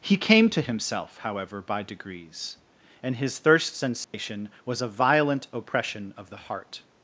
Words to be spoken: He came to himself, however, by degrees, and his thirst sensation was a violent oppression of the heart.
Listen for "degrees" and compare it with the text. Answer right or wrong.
right